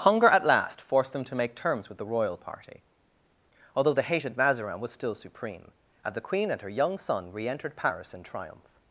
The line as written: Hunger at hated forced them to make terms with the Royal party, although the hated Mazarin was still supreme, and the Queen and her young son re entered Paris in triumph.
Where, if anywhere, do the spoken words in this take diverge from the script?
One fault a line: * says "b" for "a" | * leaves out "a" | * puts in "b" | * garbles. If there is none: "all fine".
* says "last" for "hated"